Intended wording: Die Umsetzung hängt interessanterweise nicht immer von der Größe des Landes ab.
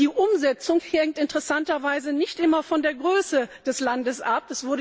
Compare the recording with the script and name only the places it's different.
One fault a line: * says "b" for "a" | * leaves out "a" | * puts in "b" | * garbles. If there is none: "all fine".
all fine